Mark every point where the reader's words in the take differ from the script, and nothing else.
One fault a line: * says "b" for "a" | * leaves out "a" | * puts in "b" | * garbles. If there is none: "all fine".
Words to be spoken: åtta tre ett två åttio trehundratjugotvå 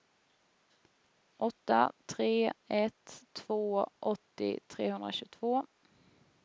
all fine